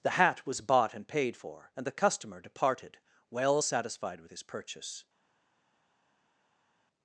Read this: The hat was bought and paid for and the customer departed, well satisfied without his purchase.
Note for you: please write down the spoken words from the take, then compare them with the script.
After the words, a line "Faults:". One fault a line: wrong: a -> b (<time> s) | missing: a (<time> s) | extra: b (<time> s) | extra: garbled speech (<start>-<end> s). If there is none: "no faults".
The hat was bought and paid for and the customer departed, well satisfied with his purchase.
Faults:
wrong: without -> with (4.2 s)